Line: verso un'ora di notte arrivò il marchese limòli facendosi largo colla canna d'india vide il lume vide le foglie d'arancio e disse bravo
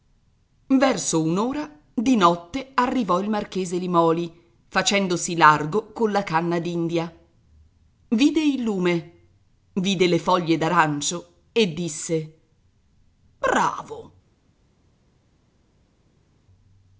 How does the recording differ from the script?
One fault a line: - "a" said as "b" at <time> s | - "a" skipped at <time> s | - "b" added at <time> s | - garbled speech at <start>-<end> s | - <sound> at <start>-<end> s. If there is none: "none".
none